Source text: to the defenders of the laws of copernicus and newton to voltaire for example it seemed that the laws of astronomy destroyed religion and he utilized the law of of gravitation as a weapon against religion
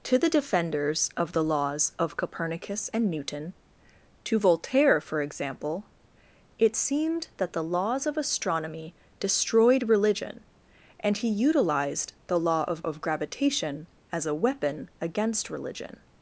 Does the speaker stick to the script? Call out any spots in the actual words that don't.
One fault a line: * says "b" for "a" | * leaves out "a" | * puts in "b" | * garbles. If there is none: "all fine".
all fine